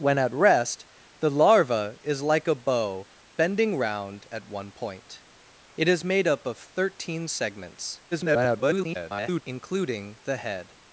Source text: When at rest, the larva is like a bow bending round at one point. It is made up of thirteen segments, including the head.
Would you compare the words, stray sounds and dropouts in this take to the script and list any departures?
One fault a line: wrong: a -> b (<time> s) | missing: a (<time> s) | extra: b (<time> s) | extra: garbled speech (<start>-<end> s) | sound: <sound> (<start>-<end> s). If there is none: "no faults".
extra: garbled speech (8.1-9.4 s)